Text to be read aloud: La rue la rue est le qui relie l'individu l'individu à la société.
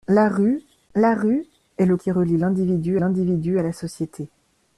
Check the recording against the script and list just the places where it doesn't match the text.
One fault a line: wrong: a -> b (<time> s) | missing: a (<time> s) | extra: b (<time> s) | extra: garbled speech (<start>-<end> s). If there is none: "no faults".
no faults